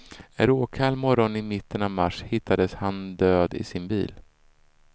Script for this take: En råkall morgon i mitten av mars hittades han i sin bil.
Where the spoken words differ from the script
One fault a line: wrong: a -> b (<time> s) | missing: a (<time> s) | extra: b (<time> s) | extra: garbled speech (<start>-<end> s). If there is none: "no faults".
extra: död (3.2 s)